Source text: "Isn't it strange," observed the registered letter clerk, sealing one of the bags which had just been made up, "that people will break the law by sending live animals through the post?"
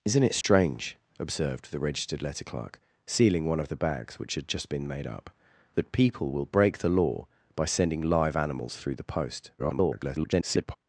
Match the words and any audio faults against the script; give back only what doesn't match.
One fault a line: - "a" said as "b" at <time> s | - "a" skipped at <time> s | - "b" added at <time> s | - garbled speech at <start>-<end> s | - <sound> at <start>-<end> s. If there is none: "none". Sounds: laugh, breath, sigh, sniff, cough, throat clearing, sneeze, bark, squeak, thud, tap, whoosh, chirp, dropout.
- dropout at 0.4-0.4 s
- garbled speech at 9.6-10.8 s